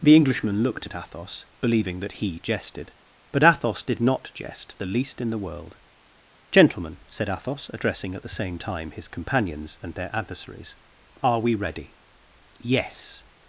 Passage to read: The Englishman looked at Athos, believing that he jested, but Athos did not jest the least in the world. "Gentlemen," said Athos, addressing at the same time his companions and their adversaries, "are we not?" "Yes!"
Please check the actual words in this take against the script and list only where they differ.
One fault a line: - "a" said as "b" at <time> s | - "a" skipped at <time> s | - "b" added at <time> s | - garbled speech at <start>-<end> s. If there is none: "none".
- "not" said as "ready" at 11.5 s